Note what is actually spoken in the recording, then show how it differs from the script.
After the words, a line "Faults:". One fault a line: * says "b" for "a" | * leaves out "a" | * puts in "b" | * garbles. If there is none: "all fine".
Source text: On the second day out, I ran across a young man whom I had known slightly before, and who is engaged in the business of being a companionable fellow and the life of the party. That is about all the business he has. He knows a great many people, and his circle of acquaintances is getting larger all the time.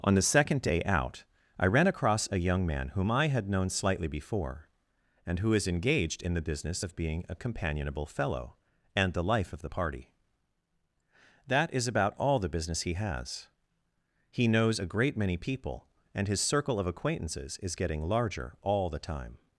On the second day out, I ran across a young man whom I had known slightly before, and who is engaged in the business of being a companionable fellow and the life of the party. That is about all the business he has. He knows a great many people, and his circle of acquaintances is getting larger all the time.
Faults:
all fine